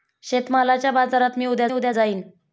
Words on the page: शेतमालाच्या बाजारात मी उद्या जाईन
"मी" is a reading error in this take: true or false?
false